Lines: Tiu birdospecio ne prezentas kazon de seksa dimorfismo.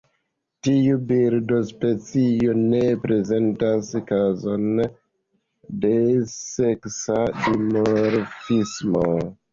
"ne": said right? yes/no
yes